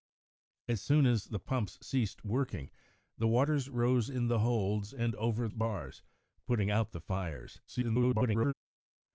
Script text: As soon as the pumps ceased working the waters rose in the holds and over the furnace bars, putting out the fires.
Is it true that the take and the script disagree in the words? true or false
true